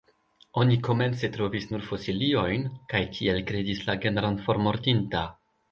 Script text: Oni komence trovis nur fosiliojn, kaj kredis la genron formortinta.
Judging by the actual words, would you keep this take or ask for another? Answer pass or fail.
fail